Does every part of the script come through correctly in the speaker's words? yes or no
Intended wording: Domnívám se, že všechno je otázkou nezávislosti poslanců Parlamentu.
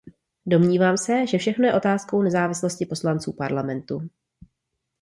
yes